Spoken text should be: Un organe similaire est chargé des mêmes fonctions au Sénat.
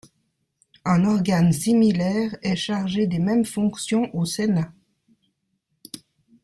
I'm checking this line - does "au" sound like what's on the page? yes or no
yes